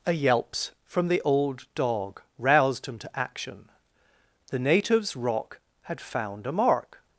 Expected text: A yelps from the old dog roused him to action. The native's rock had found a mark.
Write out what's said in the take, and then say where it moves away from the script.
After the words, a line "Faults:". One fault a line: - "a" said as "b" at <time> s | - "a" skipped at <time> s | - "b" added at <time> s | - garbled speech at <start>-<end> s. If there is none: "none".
A yelps from the old dog roused him to action. The native's rock had found a mark.
Faults:
none